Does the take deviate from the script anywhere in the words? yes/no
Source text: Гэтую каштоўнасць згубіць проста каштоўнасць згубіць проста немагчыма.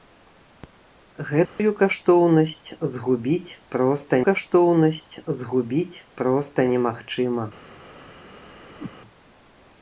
no